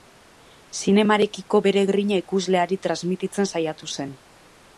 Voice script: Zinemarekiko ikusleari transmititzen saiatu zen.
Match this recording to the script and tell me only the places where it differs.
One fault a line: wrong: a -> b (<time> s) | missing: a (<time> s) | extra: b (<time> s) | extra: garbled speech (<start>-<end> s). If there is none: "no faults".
extra: bere grina (1.7 s)